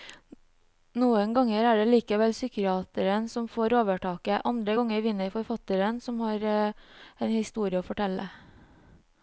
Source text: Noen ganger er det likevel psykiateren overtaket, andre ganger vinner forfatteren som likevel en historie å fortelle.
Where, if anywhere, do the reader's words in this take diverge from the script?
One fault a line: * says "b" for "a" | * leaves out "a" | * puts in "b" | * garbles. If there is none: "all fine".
* puts in "som får"
* says "har" for "likevel"